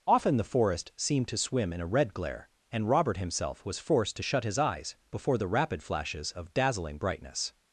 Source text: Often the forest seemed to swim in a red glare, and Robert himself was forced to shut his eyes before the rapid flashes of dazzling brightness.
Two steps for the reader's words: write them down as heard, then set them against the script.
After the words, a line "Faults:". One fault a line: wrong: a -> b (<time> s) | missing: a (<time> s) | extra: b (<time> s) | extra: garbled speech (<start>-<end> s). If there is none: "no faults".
Often the forest seemed to swim in a red glare, and Robert himself was forced to shut his eyes before the rapid flashes of dazzling brightness.
Faults:
no faults